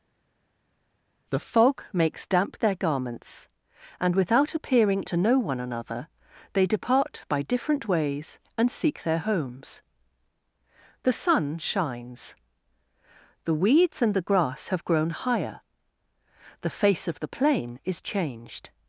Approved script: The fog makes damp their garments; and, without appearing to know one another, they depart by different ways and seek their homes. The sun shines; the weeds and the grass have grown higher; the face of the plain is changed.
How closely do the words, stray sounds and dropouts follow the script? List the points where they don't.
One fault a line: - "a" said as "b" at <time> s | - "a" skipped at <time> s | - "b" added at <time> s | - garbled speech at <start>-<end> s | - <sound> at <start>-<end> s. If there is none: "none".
none